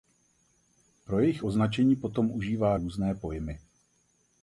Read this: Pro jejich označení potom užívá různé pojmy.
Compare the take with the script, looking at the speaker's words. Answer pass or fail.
pass